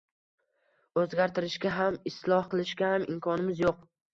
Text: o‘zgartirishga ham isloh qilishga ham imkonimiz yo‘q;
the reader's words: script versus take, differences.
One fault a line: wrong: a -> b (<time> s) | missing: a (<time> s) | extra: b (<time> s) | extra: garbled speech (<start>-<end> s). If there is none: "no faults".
no faults